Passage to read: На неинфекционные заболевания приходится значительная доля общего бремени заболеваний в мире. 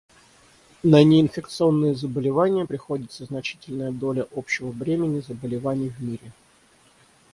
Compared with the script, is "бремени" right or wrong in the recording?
right